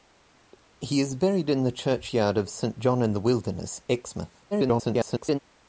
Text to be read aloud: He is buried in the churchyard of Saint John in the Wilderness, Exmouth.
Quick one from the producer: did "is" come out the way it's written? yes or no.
yes